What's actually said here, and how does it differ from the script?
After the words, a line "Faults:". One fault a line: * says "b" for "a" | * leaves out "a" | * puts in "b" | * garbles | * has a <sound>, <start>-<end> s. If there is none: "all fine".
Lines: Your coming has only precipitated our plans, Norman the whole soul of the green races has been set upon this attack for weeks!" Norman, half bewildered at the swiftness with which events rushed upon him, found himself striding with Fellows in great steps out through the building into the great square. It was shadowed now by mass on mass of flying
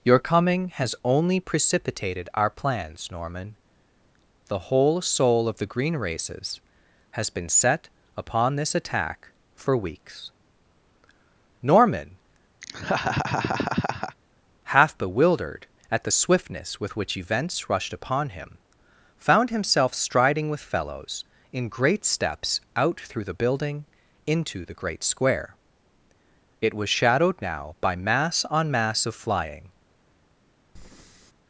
Your coming has only precipitated our plans, Norman the whole soul of the green races has been set upon this attack for weeks!" Norman, half bewildered at the swiftness with which events rushed upon him, found himself striding with Fellows in great steps out through the building into the great square. It was shadowed now by mass on mass of flying
Faults:
* has a laugh, 12.6-14.2 s
* has a breath, 30.8-31.3 s